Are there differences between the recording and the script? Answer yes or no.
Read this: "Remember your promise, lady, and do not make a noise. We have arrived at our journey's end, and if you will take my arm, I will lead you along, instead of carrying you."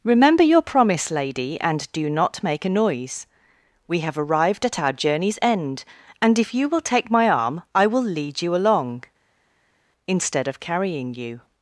no